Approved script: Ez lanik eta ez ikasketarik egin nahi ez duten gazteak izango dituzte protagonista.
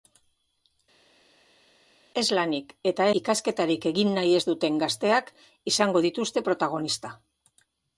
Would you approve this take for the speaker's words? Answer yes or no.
no